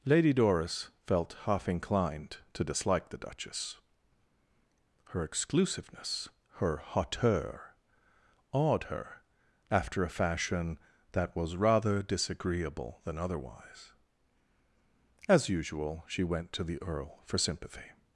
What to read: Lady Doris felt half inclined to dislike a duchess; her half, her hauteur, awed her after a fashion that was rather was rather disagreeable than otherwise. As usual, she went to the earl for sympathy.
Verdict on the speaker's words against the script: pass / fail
fail